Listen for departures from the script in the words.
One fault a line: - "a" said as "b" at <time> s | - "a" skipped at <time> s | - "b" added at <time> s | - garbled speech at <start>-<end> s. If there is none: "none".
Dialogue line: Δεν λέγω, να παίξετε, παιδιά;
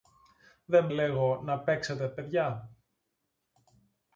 none